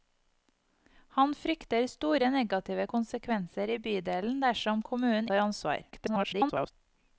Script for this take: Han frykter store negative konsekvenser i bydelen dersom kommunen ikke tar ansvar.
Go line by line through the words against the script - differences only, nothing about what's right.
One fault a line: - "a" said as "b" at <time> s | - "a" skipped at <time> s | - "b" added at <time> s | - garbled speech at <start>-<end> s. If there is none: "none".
- "ikke" skipped at 5.3 s
- garbled speech at 5.9-6.7 s